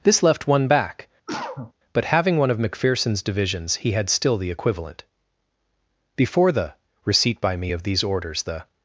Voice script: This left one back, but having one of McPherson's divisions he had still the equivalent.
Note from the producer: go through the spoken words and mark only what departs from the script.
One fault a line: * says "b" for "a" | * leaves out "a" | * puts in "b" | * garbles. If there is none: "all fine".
* puts in "Before the receipt by me of these orders the"